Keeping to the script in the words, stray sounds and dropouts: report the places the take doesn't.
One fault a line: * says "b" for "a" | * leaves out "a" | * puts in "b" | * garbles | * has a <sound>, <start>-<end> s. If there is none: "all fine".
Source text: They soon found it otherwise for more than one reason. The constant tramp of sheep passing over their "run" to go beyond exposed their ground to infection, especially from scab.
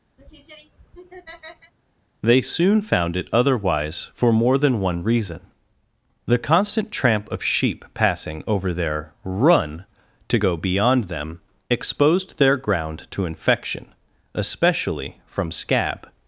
* has a laugh, 0.2-1.7 s
* puts in "them"